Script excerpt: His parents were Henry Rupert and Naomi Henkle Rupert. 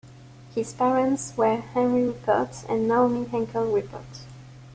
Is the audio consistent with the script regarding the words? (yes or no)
yes